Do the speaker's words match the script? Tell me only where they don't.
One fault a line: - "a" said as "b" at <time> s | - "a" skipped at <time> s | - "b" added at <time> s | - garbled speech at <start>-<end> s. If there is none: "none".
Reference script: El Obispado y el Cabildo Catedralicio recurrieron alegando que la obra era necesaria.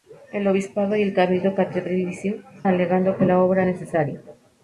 - "recurrieron" skipped at 2.4 s
- "era" skipped at 3.7 s